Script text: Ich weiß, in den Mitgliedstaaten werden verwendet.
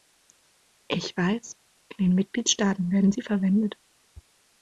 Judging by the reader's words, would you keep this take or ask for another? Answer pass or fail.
fail